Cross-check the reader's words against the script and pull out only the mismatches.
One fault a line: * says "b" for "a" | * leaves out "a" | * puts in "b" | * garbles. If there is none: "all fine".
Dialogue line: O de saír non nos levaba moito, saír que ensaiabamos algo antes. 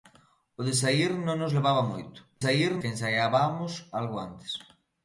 all fine